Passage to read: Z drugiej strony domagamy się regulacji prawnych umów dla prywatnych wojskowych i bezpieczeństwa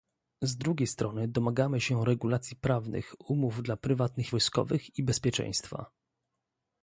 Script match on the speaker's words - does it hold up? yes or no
yes